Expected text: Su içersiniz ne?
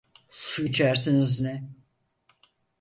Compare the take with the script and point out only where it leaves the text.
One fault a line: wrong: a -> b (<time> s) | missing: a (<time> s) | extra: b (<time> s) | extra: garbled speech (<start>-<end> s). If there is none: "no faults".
no faults